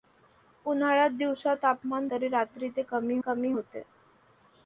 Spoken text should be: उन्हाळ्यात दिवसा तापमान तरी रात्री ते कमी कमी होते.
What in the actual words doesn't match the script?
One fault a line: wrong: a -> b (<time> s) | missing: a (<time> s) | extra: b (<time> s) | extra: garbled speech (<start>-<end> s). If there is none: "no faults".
no faults